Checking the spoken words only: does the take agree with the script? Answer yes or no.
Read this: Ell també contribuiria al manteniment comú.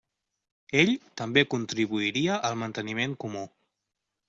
yes